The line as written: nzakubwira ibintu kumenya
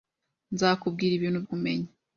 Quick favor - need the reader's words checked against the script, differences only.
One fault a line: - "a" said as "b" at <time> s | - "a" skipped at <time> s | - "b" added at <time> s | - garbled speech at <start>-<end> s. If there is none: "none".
none